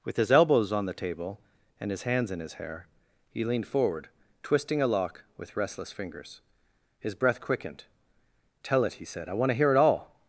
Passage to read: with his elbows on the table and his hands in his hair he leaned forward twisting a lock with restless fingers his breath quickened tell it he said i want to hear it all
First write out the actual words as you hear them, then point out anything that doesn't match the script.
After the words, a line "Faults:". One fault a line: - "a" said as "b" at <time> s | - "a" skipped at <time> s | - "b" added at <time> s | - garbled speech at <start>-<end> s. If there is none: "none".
with his elbows on the table and his hands in his hair he leaned forward twisting a lock with restless fingers his breath quickened tell it he said i want to hear it all
Faults:
none